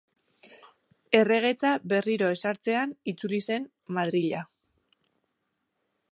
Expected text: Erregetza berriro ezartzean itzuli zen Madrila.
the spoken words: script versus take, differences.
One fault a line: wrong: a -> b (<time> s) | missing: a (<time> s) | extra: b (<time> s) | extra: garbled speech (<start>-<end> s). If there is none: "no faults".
no faults